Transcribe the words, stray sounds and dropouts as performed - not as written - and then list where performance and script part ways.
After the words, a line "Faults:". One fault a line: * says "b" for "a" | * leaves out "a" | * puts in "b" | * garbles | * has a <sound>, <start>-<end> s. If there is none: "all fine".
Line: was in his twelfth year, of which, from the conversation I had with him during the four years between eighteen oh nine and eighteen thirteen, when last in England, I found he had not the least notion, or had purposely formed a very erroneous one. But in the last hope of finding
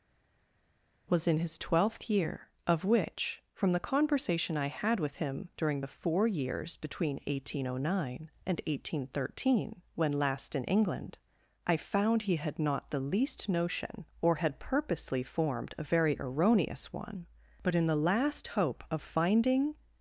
was in his twelfth year, of which, from the conversation I had with him during the four years between eighteen oh nine and eighteen thirteen, when last in England, I found he had not the least notion, or had purposely formed a very erroneous one. But in the last hope of finding
Faults:
all fine